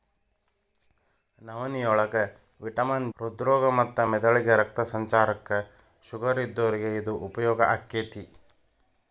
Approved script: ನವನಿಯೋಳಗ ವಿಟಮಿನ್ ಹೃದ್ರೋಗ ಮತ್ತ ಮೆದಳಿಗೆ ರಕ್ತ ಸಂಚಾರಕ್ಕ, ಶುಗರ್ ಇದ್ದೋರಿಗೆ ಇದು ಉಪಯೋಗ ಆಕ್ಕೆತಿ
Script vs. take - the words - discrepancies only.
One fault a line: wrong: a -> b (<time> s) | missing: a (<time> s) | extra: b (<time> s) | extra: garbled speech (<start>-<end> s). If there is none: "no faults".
no faults